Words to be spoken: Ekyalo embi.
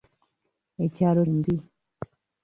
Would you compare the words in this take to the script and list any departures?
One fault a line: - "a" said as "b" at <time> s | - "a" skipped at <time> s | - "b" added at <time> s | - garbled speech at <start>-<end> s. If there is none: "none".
none